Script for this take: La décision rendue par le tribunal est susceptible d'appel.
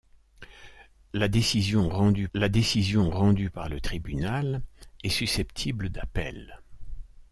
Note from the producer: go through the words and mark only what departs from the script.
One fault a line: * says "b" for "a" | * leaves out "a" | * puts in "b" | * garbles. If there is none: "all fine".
* puts in "la décision rendue"